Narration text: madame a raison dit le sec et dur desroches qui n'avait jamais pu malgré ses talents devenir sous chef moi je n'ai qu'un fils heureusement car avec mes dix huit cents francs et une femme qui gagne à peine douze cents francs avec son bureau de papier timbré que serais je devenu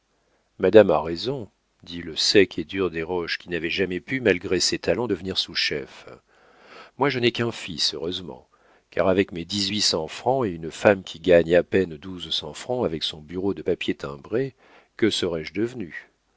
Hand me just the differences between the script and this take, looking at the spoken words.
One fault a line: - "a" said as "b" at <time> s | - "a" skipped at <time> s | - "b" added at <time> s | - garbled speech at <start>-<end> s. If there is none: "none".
none